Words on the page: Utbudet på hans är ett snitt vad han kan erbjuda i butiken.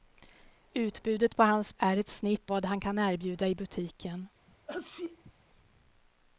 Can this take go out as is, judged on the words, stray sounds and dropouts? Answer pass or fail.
fail